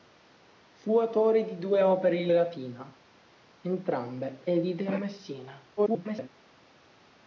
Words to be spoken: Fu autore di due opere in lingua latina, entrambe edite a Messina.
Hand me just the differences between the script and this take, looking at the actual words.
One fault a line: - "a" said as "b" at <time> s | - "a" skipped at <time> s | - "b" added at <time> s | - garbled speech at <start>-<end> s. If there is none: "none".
- "lingua" skipped at 2.3 s
- garbled speech at 5.8-6.3 s